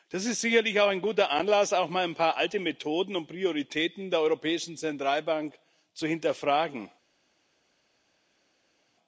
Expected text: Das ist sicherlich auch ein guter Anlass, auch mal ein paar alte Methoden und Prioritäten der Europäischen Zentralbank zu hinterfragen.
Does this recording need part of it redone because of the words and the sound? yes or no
no